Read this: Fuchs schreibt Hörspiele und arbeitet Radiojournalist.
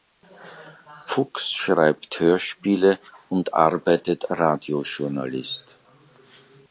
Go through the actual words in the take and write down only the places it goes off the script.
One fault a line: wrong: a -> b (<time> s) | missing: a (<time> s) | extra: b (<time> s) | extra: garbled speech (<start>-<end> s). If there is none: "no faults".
no faults